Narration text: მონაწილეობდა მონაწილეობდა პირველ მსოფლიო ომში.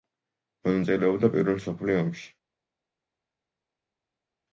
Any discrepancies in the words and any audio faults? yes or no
yes